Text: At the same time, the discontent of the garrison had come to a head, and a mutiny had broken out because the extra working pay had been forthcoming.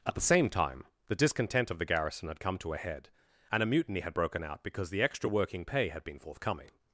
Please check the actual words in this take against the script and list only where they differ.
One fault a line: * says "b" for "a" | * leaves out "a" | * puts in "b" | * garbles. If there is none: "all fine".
all fine